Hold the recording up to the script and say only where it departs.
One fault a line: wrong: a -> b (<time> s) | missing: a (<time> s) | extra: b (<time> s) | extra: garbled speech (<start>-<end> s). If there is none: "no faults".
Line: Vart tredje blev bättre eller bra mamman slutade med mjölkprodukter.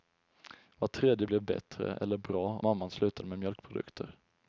no faults